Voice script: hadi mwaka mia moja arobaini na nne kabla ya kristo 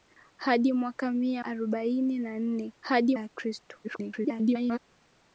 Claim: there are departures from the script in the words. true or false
true